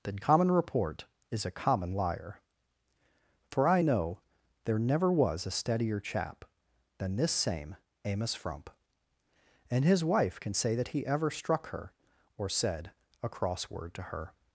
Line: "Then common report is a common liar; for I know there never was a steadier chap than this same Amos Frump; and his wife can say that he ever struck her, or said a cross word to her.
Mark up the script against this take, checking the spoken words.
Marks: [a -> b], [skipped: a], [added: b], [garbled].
"Then common report is a common liar; for I know there never was a steadier chap than this same Amos Frump; and his wife can say that he ever struck her, or said a cross word to her.